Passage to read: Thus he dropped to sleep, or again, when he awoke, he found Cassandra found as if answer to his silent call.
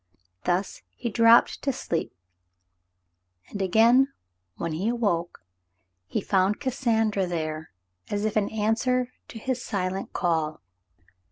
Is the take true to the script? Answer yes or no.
no